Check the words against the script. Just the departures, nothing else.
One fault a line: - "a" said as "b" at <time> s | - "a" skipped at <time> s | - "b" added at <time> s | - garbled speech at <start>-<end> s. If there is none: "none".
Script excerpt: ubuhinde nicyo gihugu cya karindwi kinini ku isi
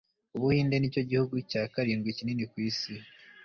none